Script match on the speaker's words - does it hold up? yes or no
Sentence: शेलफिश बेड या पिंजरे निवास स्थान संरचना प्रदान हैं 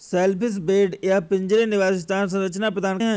yes